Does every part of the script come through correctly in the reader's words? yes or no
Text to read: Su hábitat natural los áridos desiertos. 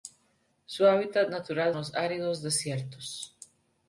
yes